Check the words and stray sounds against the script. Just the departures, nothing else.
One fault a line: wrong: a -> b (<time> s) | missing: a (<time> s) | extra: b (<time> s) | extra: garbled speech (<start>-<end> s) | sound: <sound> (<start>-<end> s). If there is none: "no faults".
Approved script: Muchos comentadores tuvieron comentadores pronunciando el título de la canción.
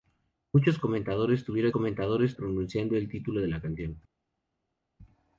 no faults